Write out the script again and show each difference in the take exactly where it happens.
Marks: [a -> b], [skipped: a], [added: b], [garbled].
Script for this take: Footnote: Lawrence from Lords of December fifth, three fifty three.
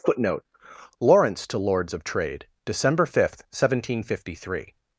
Footnote: Lawrence [from -> to] Lords of [added: Trade] December fifth, [three -> seventeen] fifty three.